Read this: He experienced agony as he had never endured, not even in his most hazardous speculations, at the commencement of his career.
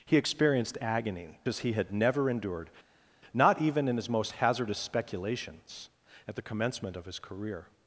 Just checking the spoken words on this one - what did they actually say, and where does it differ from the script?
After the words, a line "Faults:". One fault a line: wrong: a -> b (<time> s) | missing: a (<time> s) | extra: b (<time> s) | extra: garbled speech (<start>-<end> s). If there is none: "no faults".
He experienced agony as he had never endured, not even in his most hazardous speculations, at the commencement of his career.
Faults:
no faults